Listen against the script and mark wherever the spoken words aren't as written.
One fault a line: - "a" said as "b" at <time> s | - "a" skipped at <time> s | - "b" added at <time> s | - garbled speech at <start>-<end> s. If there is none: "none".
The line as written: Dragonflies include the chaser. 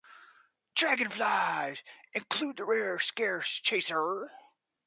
- "rare scarce" added at 2.6 s